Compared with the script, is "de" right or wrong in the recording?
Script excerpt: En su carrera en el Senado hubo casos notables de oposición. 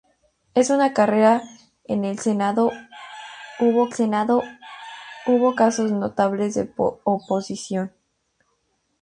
right